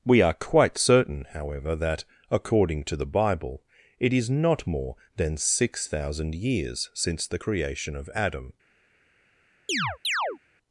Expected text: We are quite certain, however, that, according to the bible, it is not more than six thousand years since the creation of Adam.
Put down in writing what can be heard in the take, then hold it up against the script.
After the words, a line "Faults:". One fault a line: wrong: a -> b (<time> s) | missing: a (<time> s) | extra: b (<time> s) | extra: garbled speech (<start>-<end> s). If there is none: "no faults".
We are quite certain, however, that, according to the bible, it is not more than six thousand years since the creation of Adam.
Faults:
no faults